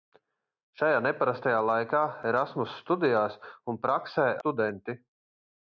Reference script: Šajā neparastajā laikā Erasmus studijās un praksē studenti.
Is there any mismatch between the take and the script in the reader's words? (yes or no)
no